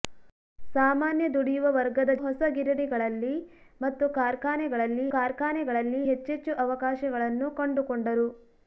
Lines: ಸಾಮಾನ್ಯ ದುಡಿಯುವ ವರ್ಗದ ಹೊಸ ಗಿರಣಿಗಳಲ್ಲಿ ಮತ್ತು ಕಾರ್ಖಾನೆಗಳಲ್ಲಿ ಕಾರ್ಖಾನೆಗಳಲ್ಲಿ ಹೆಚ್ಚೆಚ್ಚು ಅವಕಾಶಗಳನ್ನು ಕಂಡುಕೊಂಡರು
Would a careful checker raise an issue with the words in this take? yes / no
no